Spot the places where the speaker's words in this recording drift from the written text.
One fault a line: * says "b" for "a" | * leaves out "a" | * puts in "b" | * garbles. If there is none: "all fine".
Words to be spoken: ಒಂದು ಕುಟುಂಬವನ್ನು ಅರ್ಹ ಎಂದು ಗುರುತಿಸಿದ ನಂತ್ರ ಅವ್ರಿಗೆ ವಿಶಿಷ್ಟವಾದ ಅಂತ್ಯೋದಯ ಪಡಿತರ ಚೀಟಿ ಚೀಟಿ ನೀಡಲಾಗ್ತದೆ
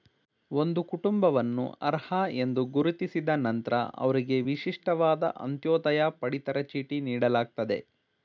* leaves out "ಚೀಟಿ"